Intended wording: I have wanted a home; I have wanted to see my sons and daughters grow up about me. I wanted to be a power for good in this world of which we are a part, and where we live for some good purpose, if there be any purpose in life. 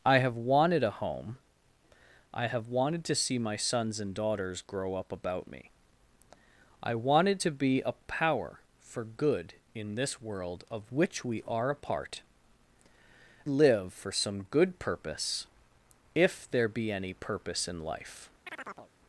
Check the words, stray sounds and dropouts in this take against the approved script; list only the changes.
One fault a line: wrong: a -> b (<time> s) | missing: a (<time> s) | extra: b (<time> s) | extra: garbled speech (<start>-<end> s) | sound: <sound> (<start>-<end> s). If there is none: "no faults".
missing: and where we (12.2 s)
sound: chirp (18.5-18.9 s)